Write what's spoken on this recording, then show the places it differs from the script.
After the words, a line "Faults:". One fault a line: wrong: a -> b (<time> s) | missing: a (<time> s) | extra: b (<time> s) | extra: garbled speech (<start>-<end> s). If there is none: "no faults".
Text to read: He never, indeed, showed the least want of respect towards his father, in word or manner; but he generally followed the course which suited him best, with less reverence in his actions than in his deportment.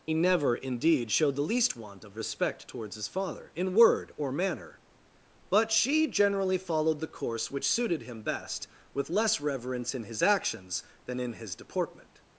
He never, indeed, showed the least want of respect towards his father, in word or manner; but she generally followed the course which suited him best, with less reverence in his actions than in his deportment.
Faults:
wrong: he -> she (5.7 s)